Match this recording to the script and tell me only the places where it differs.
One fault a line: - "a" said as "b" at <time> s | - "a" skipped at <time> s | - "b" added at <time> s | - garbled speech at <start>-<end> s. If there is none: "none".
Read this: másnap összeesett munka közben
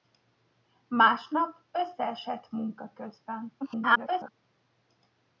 - garbled speech at 3.6-4.3 s